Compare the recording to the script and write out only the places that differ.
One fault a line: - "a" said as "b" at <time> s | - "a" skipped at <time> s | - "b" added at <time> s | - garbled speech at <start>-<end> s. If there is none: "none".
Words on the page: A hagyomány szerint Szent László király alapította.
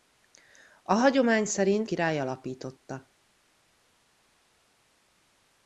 - "Szent László" skipped at 1.9 s